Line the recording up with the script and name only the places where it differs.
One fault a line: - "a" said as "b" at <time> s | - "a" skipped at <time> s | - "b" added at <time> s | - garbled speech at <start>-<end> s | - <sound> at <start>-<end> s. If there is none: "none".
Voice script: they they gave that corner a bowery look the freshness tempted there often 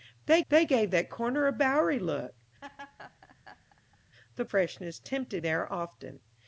- laugh at 2.6-4.0 s